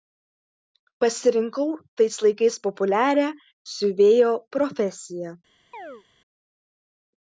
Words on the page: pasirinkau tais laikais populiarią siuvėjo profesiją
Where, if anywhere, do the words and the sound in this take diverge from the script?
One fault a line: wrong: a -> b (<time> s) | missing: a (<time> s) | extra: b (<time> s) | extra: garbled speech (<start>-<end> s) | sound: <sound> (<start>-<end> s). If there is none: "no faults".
sound: chirp (5.7-6.0 s)